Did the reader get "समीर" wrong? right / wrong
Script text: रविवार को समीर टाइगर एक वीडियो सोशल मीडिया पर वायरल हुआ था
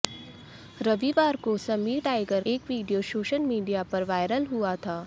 right